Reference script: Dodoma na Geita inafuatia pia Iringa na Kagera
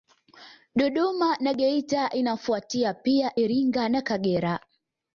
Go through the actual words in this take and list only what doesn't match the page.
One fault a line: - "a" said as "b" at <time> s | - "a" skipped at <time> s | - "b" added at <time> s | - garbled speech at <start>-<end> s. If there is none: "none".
none